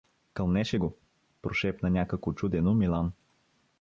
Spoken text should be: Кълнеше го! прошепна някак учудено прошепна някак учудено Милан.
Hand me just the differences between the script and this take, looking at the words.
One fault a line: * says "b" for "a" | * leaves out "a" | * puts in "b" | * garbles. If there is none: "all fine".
* leaves out "прошепна някак учудено"